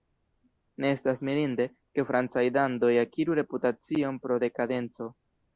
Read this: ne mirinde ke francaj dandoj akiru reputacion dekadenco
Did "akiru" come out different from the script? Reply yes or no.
no